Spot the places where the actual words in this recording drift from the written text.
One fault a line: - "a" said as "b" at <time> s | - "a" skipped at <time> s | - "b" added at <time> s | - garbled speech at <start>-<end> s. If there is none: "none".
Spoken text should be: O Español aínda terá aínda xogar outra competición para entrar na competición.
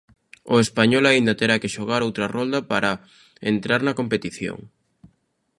- "aínda" said as "que" at 1.6 s
- "competición" said as "rolda" at 2.4 s